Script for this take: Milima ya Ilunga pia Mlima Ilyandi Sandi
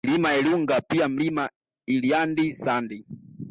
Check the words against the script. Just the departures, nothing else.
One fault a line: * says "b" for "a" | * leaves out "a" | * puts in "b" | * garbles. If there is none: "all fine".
all fine